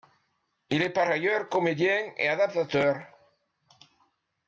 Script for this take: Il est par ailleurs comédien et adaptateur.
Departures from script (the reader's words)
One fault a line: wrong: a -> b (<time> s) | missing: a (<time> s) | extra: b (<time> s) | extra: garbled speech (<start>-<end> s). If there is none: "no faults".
no faults